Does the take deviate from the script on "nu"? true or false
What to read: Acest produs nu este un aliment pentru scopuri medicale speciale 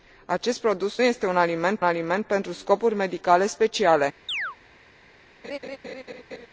true